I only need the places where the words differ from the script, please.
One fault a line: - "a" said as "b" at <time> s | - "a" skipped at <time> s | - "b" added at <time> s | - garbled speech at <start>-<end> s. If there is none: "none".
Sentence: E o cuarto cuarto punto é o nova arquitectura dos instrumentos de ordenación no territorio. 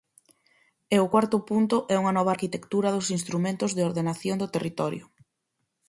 - "cuarto" skipped at 1.4 s
- "o" said as "unha" at 2.0 s
- "no" said as "do" at 4.4 s